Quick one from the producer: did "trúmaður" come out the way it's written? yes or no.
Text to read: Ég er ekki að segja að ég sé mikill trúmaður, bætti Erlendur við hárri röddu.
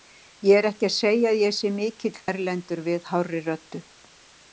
no